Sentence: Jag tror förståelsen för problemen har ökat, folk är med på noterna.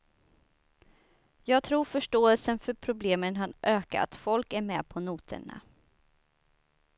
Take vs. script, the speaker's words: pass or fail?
pass